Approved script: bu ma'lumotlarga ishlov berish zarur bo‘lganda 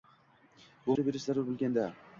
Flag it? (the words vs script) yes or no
yes